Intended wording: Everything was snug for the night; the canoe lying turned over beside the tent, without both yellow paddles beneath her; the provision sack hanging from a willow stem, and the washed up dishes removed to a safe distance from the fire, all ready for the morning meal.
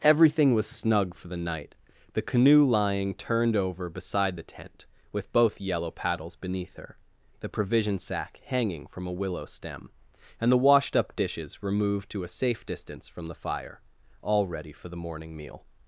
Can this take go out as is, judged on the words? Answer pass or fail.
fail